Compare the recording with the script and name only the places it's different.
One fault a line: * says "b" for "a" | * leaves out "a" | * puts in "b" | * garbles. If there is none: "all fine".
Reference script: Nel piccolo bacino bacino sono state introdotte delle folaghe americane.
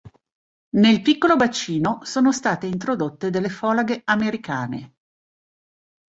* leaves out "bacino"